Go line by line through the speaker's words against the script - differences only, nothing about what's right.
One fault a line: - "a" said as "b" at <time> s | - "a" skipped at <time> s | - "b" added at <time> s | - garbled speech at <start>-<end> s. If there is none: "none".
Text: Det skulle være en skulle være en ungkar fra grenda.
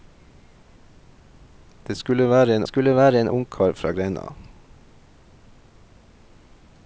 none